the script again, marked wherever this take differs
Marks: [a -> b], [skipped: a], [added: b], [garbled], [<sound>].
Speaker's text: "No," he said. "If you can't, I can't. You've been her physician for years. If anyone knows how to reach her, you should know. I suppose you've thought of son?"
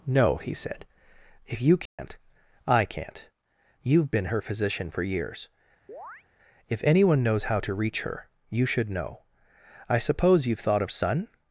"No," he said. "If you can't, [dropout] I can't. You've been her physician for years. [chirp] If anyone knows how to reach her, you should know. I suppose you've thought of son?"